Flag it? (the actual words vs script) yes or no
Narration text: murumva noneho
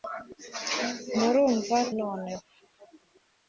no